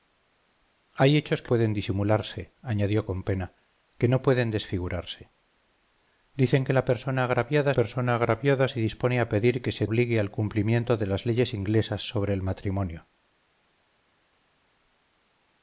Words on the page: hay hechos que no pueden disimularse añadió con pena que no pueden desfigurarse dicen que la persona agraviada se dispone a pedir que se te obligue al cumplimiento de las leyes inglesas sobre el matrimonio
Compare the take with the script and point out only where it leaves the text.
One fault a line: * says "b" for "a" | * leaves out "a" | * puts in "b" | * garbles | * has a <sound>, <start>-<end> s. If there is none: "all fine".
* leaves out "no"
* puts in "persona agraviada"
* leaves out "te"